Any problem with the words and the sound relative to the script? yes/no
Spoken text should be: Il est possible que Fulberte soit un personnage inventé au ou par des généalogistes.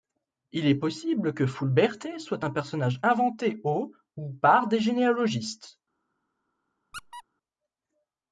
yes